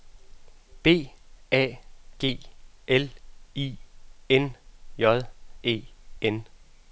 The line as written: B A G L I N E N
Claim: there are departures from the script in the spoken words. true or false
true